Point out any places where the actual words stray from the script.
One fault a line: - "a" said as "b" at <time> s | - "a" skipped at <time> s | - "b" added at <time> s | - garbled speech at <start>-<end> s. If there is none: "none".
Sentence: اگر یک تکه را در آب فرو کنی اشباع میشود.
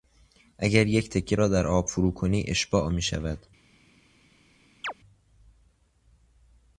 none